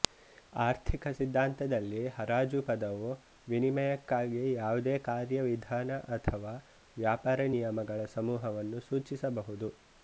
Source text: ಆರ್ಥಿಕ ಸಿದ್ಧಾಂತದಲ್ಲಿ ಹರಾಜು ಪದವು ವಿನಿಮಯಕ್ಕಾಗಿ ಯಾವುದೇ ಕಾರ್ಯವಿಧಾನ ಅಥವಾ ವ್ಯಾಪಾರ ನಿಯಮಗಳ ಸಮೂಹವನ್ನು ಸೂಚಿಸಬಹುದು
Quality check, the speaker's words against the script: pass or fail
pass